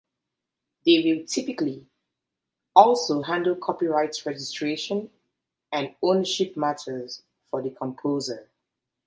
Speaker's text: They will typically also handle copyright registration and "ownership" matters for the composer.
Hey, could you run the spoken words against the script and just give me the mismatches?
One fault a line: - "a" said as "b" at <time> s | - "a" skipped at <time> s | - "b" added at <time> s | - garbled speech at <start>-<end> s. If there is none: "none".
none